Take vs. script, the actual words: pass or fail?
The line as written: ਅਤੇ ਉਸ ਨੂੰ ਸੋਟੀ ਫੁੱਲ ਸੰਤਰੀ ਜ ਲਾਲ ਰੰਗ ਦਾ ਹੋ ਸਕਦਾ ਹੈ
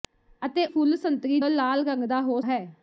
fail